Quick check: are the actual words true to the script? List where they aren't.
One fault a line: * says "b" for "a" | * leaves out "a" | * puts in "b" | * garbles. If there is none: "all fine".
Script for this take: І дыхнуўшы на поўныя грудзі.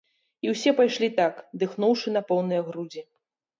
* puts in "ўсе пайшлі так"